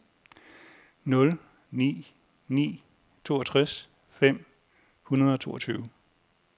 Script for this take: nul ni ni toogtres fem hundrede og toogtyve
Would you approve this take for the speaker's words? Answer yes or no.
yes